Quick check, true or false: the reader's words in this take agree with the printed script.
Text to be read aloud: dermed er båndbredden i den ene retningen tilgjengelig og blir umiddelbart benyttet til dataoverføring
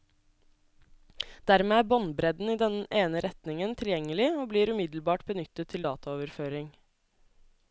true